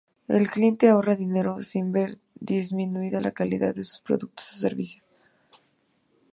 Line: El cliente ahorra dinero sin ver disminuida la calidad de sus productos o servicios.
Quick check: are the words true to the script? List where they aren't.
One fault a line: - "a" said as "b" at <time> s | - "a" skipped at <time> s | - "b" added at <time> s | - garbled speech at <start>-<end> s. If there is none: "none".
none